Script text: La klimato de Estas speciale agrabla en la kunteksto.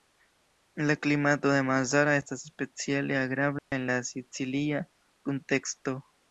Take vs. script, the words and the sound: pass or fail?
fail